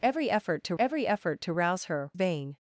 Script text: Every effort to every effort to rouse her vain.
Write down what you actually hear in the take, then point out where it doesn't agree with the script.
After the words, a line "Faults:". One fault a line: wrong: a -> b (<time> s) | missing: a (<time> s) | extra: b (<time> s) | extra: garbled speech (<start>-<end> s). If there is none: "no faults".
Every effort to every effort to rouse her vain.
Faults:
no faults